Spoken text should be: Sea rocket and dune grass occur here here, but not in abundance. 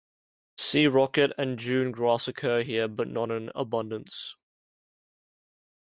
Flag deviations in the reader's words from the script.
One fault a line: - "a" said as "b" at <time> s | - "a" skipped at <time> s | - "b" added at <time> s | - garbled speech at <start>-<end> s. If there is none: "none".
- "here" skipped at 2.9 s